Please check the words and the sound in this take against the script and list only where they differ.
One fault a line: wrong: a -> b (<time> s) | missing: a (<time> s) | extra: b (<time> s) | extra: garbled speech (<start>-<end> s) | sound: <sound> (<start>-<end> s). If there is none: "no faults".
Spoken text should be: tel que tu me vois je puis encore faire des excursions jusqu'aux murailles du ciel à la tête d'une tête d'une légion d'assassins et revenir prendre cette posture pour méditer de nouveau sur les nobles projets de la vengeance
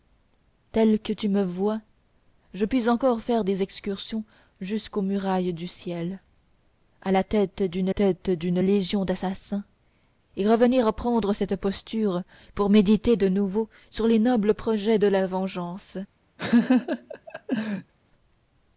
sound: laugh (16.4-17.9 s)